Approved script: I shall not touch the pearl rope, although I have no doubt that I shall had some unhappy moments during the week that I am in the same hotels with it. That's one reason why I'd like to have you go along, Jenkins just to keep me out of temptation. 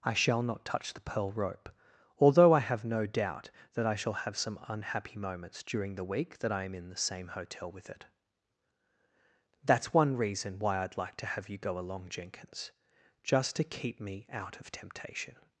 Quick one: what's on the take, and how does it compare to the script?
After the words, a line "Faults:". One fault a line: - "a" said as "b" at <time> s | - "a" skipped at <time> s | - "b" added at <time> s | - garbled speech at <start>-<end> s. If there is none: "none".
I shall not touch the pearl rope, although I have no doubt that I shall have some unhappy moments during the week that I am in the same hotel with it. That's one reason why I'd like to have you go along, Jenkins just to keep me out of temptation.
Faults:
- "had" said as "have" at 4.2 s
- "hotels" said as "hotel" at 7.3 s